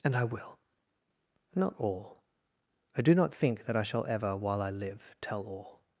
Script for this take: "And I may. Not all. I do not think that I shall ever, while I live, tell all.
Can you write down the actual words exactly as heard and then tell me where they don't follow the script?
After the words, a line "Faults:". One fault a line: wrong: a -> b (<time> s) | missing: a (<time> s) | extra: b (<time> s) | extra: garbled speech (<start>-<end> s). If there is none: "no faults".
"And I will. Not all. I do not think that I shall ever, while I live, tell all.
Faults:
wrong: may -> will (0.2 s)